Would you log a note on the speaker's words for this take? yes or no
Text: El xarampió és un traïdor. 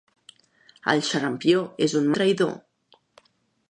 no